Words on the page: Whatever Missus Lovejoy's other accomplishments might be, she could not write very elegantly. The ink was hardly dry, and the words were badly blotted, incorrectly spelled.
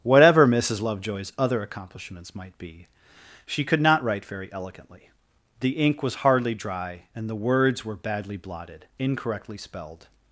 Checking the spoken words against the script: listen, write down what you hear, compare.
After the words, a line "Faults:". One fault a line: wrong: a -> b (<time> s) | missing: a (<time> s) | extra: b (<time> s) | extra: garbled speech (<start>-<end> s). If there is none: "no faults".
Whatever Missus Lovejoy's other accomplishments might be, she could not write very elegantly. The ink was hardly dry, and the words were badly blotted, incorrectly spelled.
Faults:
no faults